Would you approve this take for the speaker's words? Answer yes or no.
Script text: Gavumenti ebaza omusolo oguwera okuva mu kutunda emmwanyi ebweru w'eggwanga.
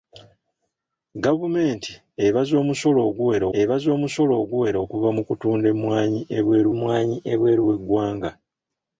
no